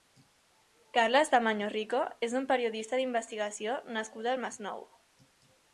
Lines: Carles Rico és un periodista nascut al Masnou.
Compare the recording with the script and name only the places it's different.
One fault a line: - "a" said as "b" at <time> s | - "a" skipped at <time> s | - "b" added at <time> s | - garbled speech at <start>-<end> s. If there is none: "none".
- "Tamayo" added at 1.3 s
- "d'investigació" added at 3.0 s